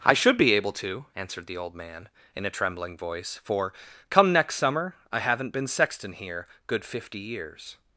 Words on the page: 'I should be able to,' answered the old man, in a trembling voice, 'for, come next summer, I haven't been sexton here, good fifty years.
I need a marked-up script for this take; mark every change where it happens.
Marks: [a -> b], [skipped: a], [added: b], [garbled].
'I should be able to,' answered the old man, in a trembling voice, 'for, come next summer, I haven't been sexton here, good fifty years.